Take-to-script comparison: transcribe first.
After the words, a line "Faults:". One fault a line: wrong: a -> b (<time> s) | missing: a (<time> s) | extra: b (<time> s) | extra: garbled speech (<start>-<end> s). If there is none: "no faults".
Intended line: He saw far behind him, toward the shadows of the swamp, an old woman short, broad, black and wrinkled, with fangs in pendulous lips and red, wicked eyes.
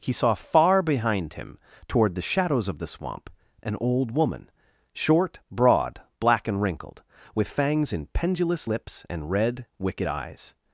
He saw far behind him, toward the shadows of the swamp, an old woman short, broad, black and wrinkled, with fangs in pendulous lips and red, wicked eyes.
Faults:
no faults